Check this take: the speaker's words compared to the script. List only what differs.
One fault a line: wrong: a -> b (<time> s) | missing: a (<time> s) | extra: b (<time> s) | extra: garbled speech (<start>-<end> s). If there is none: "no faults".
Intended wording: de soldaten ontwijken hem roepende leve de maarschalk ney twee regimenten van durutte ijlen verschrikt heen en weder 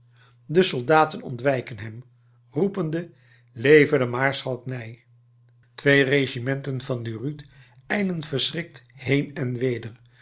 no faults